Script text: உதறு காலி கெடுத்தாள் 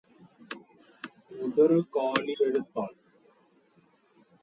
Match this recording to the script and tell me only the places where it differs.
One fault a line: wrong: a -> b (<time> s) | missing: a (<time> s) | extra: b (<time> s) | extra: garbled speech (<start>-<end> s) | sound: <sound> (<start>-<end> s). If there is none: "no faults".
no faults